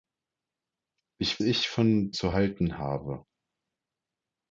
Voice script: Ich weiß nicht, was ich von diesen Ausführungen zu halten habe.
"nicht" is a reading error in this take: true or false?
true